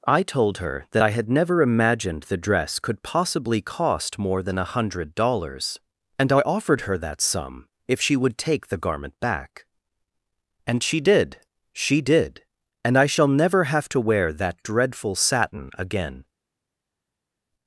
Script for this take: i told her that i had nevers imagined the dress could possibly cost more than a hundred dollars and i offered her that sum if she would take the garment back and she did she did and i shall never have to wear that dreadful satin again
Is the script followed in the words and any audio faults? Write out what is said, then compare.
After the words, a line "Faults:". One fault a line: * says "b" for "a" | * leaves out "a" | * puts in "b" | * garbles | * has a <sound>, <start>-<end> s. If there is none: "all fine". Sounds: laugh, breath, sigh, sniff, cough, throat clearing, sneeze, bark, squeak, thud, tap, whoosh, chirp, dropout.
i told her that i had never imagined the dress could possibly cost more than a hundred dollars and i offered her that sum if she would take the garment back and she did she did and i shall never have to wear that dreadful satin again
Faults:
* says "never" for "nevers"